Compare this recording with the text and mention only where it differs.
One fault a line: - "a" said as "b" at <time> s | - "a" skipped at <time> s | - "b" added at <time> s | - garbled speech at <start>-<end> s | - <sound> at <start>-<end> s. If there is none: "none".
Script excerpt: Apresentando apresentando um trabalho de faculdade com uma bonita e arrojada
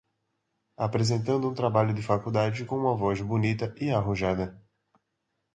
- "apresentando" skipped at 1.5 s
- "voz" added at 2.9 s